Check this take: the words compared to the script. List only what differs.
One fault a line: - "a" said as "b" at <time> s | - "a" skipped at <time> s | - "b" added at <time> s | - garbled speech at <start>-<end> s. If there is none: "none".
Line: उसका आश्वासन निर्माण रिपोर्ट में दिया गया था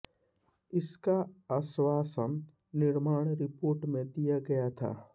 - "उसका" said as "इसका" at 0.7 s